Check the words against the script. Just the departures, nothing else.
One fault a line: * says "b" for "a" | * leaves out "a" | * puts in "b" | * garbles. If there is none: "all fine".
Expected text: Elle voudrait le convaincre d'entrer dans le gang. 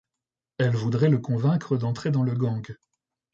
all fine